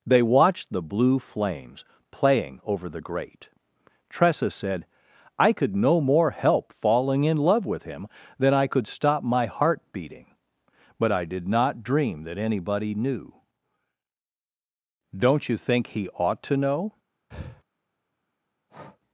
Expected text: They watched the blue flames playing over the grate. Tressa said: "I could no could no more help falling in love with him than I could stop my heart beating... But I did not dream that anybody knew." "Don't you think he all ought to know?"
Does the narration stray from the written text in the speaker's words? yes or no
yes